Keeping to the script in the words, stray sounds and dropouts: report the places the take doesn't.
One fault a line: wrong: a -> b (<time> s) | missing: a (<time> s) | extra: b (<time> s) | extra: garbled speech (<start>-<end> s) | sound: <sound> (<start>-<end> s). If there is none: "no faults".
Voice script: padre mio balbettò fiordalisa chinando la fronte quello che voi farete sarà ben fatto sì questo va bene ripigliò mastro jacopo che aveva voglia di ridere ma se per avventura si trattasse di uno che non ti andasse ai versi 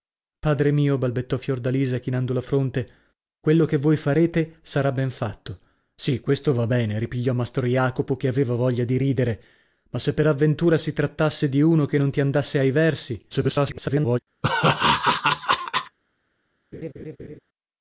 extra: garbled speech (13.3-14.2 s)
sound: laugh (14.4-16.0 s)
sound: laugh (16.7-17.4 s)